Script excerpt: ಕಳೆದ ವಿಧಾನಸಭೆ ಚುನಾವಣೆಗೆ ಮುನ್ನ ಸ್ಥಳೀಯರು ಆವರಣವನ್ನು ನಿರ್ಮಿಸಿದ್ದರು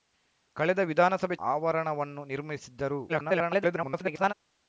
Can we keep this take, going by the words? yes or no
no